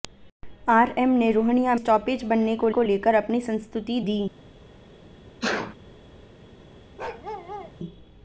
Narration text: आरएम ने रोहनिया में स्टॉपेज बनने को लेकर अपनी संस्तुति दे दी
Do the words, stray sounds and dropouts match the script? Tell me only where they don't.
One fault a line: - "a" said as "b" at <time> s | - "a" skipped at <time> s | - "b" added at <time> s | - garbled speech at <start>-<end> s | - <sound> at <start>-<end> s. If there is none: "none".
- "में" skipped at 1.8 s
- "को" added at 2.7 s
- "दे" skipped at 4.0 s
- sneeze at 5.4-5.8 s
- bark at 7.0-7.7 s